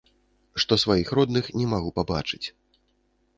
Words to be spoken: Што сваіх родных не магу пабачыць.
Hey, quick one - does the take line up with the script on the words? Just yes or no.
yes